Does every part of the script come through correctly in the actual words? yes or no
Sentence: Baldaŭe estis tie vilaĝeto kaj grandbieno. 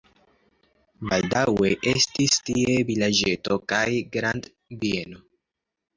yes